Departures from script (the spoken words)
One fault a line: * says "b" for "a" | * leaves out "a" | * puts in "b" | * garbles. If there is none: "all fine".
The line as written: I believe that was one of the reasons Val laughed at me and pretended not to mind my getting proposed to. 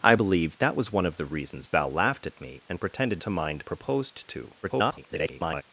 * leaves out "not"
* leaves out "my getting"
* garbles